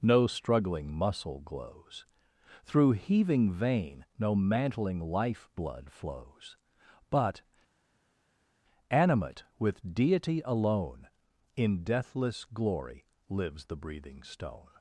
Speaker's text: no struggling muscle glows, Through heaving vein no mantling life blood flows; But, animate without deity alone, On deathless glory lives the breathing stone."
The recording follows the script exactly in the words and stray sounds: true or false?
false